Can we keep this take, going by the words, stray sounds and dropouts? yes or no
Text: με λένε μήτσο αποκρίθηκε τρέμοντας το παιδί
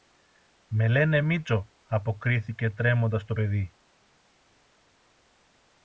yes